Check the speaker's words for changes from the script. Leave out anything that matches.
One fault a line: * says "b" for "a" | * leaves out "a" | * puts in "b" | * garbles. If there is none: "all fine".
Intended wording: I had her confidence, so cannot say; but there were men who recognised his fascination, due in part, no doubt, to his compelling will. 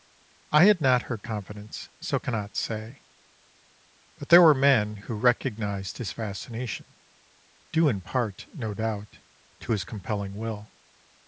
* puts in "not"